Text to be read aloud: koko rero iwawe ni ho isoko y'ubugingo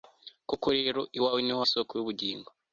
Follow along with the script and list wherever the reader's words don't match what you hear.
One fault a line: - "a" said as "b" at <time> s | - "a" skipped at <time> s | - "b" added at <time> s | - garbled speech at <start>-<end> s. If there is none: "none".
none